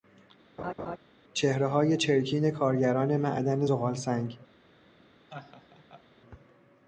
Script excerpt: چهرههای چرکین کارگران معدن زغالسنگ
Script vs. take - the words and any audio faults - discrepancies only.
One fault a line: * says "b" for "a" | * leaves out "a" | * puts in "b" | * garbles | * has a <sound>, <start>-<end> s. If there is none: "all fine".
* has a laugh, 0.6-1.0 s
* has a laugh, 5.3-6.0 s